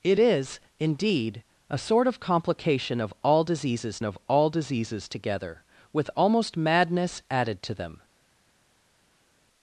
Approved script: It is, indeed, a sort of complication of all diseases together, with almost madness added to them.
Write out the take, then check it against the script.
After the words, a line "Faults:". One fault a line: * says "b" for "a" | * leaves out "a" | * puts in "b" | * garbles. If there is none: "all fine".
It is, indeed, a sort of complication of all diseases of all diseases together, with almost madness added to them.
Faults:
* puts in "of all diseases"